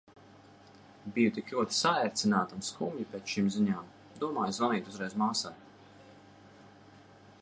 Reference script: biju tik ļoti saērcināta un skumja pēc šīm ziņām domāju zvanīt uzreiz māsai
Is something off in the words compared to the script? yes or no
no